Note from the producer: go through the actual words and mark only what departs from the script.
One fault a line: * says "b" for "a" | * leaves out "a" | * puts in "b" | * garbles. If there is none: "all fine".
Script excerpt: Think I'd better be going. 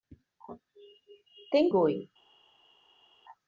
* leaves out "I'd better be"